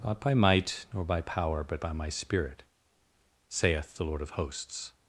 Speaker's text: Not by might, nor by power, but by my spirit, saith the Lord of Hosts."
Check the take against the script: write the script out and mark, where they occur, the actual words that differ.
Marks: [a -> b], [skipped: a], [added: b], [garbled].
Not by might, nor by power, but by my spirit, saith the Lord of Hosts."